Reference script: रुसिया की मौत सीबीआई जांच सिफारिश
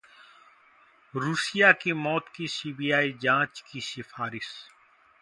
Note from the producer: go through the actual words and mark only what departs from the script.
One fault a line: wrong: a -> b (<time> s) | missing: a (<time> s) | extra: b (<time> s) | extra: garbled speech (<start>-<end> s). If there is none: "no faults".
extra: की (2.4 s)
extra: की (3.7 s)